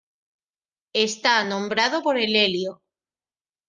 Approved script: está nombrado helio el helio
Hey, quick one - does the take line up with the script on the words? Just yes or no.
no